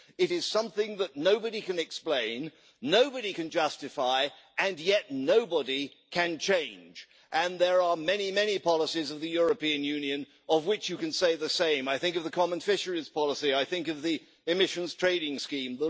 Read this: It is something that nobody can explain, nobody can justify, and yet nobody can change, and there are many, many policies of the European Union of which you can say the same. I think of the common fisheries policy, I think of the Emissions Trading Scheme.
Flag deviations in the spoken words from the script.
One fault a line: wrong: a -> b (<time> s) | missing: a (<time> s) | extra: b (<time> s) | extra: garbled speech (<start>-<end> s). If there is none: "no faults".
no faults